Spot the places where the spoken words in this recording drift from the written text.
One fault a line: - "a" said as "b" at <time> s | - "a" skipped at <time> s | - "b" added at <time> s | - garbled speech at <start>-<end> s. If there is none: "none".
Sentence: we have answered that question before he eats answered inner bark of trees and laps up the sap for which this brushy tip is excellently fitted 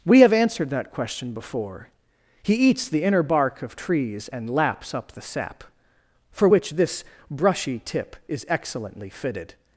- "answered" said as "the" at 2.9 s